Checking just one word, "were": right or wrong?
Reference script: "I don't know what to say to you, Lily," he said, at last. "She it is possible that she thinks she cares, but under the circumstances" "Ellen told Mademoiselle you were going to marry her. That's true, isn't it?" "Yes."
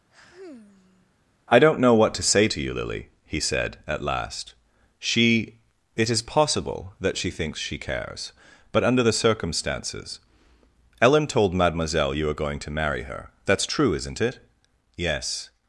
wrong